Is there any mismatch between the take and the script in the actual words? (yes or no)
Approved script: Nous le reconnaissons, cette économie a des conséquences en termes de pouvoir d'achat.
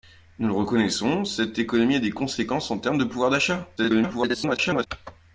yes